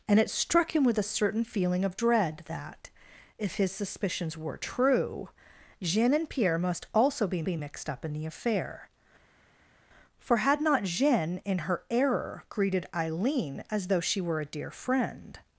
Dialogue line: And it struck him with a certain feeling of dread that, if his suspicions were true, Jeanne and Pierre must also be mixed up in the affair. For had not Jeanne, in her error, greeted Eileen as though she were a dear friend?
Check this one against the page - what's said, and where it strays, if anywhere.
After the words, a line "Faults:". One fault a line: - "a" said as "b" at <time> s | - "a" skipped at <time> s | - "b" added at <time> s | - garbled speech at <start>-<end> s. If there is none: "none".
And it struck him with a certain feeling of dread that, if his suspicions were true, Jeanne and Pierre must also be be mixed up in the affair. For had not Jeanne, in her error, greeted Eileen as though she were a dear friend?
Faults:
- "be" added at 7.4 s